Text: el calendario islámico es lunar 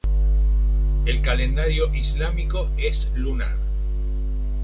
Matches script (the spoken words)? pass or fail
pass